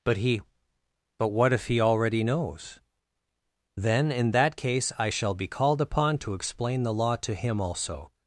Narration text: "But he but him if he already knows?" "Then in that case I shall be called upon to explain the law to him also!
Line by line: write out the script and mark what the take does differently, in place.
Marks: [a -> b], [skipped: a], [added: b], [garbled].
"But he but [him -> what] if he already knows?" "Then in that case I shall be called upon to explain the law to him also!